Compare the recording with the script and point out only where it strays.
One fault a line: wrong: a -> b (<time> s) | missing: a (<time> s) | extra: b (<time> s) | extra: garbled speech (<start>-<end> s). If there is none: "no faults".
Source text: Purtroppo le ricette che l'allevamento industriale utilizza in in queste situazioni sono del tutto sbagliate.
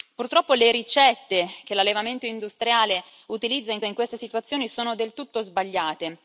no faults